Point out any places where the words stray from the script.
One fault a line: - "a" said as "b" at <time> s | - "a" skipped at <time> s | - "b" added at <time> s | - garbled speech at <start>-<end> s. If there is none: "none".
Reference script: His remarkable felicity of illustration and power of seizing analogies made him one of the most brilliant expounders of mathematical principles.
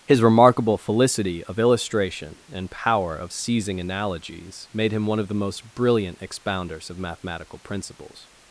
none